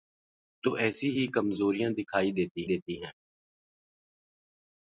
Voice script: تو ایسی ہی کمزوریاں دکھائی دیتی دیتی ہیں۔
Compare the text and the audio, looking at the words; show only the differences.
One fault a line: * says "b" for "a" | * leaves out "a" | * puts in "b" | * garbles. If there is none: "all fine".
all fine